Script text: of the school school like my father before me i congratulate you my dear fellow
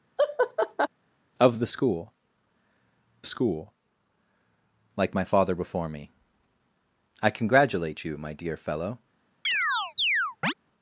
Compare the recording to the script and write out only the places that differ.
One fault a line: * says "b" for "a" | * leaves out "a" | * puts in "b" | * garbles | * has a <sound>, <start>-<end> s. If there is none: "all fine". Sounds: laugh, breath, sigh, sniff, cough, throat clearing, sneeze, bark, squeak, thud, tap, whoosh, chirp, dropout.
* has a laugh, 0.2-0.9 s
* has a chirp, 9.4-10.5 s